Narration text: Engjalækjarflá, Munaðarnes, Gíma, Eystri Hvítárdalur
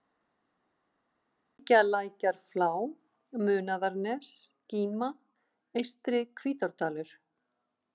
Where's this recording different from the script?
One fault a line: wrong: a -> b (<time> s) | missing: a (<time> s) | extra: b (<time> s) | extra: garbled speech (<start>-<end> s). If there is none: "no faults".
no faults